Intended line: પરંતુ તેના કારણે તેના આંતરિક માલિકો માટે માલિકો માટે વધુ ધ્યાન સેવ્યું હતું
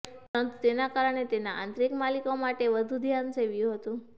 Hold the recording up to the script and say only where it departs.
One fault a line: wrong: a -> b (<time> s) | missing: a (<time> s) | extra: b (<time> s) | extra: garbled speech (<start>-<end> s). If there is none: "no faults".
missing: માલિકો માટે (2.7 s)